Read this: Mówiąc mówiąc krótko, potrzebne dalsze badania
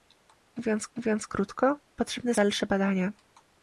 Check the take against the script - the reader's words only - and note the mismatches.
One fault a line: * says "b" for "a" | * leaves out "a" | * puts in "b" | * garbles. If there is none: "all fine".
all fine